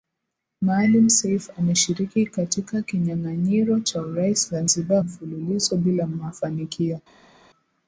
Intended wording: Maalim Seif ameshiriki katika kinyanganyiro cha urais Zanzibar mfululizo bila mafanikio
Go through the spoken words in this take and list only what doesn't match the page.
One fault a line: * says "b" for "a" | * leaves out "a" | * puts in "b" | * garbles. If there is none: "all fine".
all fine